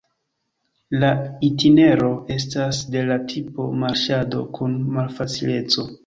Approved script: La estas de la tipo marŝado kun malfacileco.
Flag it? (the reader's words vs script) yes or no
yes